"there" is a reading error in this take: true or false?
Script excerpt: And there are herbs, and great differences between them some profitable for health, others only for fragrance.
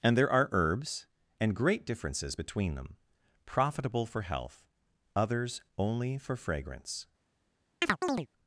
false